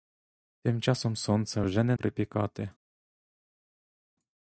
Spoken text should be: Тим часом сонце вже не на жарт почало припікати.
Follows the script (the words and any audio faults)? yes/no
no